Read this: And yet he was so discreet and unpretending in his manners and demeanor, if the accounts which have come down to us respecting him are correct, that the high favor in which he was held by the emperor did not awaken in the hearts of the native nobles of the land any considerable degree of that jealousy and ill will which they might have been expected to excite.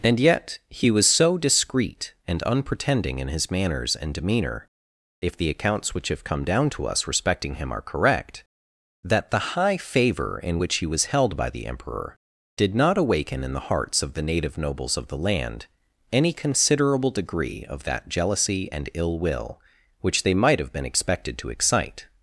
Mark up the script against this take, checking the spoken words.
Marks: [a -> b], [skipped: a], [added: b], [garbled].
And yet he was so discreet and unpretending in his manners and demeanor, if the accounts which have come down to us respecting him are correct, that the high favor in which he was held by the emperor did not awaken in the hearts of the native nobles of the land any considerable degree of that jealousy and ill will which they might have been expected to excite.